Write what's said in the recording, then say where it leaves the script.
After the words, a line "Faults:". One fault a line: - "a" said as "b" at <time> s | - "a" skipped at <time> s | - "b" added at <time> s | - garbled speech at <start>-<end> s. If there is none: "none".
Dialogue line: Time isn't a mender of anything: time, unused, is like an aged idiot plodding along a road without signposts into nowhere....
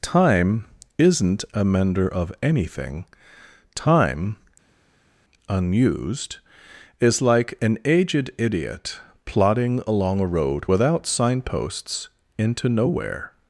Time isn't a mender of anything: time, unused, is like an aged idiot plodding along a road without signposts into nowhere....
Faults:
none